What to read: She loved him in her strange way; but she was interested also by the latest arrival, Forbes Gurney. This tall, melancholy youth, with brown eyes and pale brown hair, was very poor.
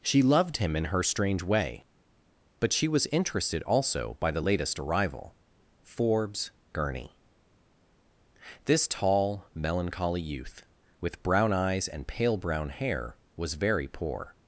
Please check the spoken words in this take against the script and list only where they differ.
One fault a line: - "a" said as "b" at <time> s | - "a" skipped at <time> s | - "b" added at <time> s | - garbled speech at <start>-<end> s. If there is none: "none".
none